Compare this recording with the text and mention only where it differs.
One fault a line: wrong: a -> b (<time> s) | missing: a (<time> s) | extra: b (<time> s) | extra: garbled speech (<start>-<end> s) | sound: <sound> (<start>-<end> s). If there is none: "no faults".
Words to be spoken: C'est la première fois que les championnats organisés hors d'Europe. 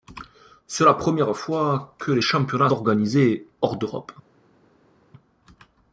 no faults